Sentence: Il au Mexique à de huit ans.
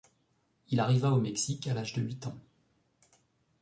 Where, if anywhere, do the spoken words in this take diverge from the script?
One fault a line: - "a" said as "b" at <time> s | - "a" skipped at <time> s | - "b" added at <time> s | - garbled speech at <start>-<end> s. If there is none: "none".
- "arriva" added at 0.8 s
- "l'âge" added at 1.7 s